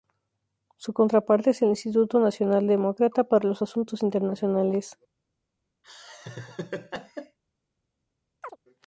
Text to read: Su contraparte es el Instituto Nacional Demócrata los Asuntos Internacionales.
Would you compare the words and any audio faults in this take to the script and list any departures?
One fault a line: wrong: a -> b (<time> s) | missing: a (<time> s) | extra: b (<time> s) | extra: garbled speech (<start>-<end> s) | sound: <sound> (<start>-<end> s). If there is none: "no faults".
extra: para (3.2 s)
sound: laugh (5.8-7.4 s)
sound: chirp (8.4-8.6 s)